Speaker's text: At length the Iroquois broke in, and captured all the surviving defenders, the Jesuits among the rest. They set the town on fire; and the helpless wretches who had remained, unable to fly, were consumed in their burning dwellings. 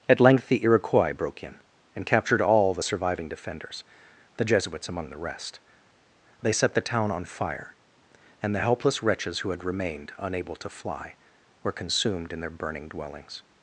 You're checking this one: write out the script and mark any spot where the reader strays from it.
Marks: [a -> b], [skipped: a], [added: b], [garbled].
At length the Iroquois broke in, and captured all the surviving defenders, the Jesuits among the rest. They set the town on fire; and the helpless wretches who had remained, unable to fly, were consumed in their burning dwellings.